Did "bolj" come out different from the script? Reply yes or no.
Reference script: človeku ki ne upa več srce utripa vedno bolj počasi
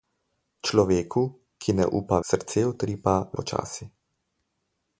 yes